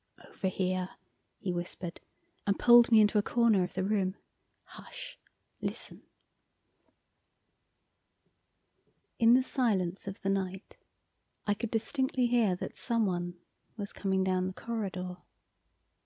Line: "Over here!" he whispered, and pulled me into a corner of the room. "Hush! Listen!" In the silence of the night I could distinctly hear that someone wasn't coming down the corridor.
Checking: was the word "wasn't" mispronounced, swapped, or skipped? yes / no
yes